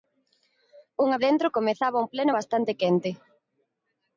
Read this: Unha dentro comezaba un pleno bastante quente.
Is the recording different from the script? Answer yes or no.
no